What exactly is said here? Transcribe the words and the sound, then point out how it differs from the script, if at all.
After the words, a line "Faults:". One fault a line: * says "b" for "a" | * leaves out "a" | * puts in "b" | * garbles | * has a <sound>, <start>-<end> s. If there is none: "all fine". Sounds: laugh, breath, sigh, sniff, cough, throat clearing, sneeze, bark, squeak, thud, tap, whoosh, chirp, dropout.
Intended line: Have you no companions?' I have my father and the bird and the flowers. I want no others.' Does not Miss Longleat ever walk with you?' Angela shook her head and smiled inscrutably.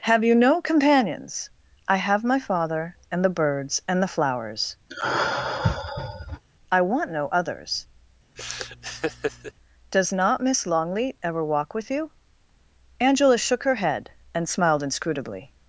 Have you no companions?' I have my father and the birds and the flowers. I want no others.' Does not Miss Longleat ever walk with you?' Angela shook her head and smiled inscrutably.
Faults:
* says "birds" for "bird"
* has a sigh, 4.9-6.4 s
* has a laugh, 8.4-9.5 s